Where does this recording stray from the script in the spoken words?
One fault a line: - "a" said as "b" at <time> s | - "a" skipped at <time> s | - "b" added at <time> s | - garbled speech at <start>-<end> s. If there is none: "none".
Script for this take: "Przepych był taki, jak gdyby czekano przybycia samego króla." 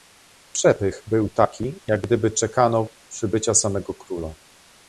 none